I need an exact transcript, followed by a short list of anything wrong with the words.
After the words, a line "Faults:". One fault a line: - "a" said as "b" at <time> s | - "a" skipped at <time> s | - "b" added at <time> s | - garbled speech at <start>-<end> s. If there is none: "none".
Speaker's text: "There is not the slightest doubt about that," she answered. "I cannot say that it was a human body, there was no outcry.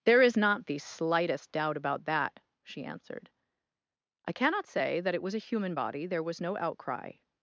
"There is not the slightest doubt about that," she answered. "I cannot say that it was a human body, there was no outcry.
Faults:
none